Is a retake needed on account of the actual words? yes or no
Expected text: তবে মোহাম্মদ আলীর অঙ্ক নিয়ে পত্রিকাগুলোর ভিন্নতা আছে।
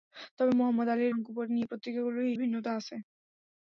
no